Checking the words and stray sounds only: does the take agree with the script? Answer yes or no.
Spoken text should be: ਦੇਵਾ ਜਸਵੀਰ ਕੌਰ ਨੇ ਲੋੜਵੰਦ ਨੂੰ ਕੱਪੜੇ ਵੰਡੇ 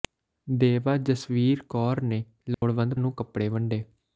no